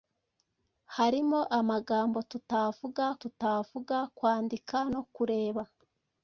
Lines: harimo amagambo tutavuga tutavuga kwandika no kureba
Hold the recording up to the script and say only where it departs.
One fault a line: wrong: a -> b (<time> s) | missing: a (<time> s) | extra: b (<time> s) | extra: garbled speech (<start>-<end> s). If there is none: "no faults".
no faults